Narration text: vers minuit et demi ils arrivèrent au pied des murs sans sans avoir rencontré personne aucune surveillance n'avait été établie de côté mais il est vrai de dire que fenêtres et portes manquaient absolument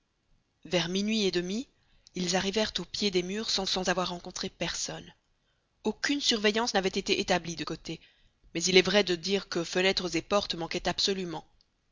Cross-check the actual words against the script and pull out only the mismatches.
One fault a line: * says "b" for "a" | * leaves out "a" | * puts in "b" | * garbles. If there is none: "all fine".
all fine